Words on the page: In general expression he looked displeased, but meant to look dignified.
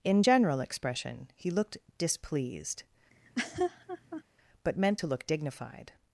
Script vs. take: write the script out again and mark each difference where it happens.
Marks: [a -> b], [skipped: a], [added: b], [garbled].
In general expression he looked displeased, but meant to look dignified.